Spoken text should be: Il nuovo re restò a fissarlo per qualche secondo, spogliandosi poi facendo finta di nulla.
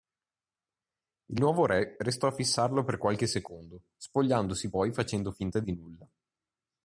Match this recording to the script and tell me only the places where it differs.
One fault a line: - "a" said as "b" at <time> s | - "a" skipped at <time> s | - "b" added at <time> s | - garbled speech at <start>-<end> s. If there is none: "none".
none